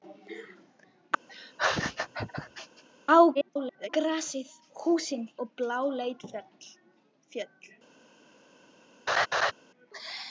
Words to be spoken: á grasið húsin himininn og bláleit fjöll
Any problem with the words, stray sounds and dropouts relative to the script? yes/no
yes